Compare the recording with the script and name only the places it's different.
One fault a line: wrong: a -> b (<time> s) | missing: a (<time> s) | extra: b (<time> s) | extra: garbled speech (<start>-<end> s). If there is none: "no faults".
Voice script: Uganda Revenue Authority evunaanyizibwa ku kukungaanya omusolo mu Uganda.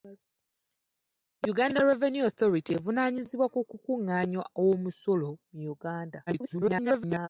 extra: garbled speech (6.3-7.3 s)